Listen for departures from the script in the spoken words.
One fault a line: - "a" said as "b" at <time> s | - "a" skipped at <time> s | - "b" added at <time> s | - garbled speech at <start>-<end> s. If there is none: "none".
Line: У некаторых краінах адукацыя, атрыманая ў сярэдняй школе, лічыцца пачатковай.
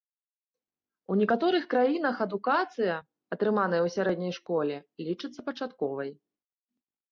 none